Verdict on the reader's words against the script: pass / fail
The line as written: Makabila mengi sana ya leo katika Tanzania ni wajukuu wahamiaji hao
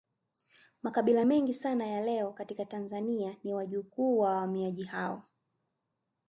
fail